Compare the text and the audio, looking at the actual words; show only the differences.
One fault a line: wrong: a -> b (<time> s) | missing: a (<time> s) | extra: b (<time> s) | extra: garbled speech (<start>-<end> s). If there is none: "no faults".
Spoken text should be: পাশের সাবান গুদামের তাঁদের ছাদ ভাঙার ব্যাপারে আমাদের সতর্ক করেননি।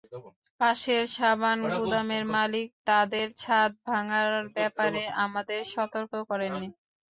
extra: মালিক (2.4 s)